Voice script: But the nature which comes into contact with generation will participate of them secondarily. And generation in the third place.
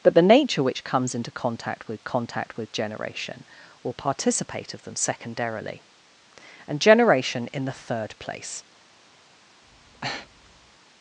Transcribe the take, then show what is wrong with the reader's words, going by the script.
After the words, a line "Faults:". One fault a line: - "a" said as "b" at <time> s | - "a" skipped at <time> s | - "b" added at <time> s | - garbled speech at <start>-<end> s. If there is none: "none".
But the nature which comes into contact with contact with generation will participate of them secondarily. And generation in the third place.
Faults:
- "contact with" added at 2.0 s